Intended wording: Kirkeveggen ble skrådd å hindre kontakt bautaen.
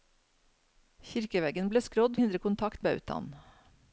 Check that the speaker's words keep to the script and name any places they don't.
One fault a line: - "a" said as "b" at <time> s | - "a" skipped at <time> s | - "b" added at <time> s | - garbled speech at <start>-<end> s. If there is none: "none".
none